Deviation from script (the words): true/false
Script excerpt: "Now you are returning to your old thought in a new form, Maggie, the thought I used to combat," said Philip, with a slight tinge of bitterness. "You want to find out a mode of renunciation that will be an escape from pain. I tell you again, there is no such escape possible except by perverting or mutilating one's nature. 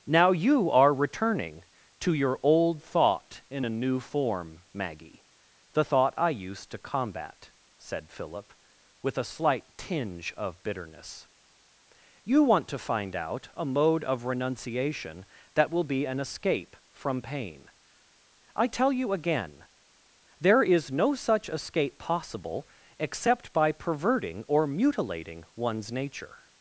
false